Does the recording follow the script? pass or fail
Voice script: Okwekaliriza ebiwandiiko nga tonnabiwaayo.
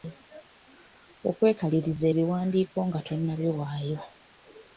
pass